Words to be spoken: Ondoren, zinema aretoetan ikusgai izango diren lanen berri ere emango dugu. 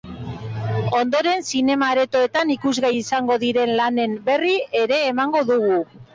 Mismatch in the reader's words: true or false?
false